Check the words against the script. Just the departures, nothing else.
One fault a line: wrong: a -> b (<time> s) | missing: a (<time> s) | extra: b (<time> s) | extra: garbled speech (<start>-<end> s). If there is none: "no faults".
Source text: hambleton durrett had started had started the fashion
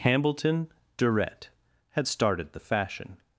missing: had started (2.5 s)